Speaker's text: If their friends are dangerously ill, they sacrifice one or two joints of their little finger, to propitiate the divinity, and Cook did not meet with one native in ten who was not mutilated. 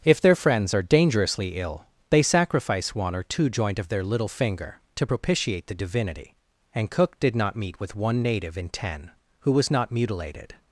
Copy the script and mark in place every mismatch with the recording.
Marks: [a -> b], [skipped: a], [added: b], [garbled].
If their friends are dangerously ill, they sacrifice one or two [joints -> joint] of their little finger, to propitiate the divinity, and Cook did not meet with one native in ten who was not mutilated.